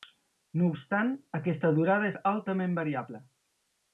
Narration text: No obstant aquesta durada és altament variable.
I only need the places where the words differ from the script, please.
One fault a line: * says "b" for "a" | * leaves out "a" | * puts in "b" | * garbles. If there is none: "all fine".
all fine